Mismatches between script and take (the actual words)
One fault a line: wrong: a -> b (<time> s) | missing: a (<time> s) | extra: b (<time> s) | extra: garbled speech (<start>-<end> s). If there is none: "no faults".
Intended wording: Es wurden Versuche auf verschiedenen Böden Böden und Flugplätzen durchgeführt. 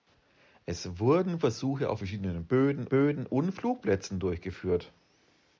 no faults